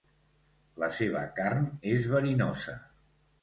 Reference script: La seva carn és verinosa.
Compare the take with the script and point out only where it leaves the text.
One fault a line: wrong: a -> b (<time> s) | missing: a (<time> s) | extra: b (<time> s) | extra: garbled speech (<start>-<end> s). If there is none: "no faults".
no faults